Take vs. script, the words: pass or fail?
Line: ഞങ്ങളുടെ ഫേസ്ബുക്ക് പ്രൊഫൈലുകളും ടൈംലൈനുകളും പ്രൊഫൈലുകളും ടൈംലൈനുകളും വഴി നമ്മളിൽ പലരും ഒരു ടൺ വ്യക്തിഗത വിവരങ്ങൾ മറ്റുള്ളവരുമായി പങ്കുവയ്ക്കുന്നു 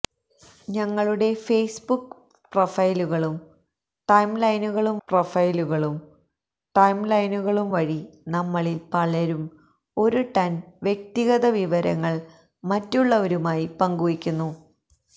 pass